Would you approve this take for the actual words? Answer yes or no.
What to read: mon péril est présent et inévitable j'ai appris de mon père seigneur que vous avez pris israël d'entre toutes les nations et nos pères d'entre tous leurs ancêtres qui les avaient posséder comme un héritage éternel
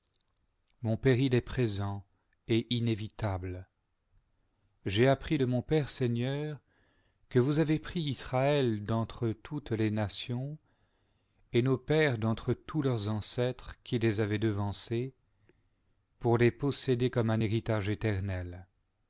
no